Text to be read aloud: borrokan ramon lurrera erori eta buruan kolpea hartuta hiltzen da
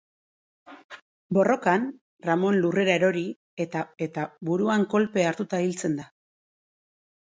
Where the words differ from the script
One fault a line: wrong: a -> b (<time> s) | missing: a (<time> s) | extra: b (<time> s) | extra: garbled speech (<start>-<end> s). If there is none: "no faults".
extra: eta (4.1 s)